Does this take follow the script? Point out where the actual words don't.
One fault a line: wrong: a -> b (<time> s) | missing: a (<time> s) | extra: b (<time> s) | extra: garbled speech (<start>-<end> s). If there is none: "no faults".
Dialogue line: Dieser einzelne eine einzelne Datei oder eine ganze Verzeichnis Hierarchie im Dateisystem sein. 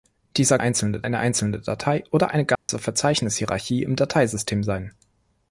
no faults